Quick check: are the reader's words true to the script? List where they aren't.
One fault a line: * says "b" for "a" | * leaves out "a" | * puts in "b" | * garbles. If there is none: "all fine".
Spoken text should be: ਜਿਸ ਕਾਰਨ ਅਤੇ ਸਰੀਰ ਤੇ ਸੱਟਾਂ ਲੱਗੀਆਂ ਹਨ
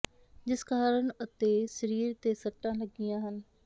all fine